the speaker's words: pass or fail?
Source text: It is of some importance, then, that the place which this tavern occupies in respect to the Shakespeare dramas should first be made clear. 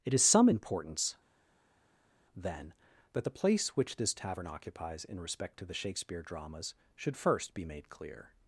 fail